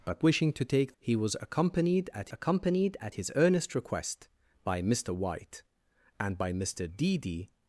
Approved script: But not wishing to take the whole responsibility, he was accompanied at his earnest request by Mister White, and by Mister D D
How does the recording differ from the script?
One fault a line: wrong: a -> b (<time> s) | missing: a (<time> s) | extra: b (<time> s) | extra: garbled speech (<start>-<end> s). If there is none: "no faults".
missing: not (0.2 s)
wrong: the whole responsibility he was -> he was accompanied at (1.0 s)